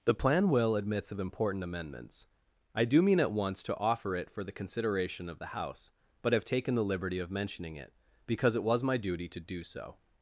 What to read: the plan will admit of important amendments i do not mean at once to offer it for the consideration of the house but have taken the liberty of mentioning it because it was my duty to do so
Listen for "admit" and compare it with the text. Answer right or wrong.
wrong